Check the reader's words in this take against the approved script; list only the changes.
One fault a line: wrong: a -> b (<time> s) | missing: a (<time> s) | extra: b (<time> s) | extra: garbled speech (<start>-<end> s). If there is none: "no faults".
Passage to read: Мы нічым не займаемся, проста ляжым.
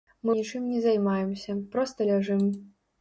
no faults